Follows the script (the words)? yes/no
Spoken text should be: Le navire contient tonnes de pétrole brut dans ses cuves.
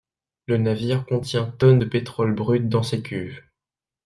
yes